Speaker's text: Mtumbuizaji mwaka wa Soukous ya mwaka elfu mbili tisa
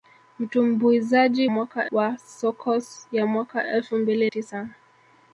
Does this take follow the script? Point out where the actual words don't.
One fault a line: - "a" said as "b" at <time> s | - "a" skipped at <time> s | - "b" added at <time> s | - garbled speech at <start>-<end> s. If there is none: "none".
none